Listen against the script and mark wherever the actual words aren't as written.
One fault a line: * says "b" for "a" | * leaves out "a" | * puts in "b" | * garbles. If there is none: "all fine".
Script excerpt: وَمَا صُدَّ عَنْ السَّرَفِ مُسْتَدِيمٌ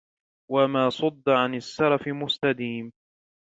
all fine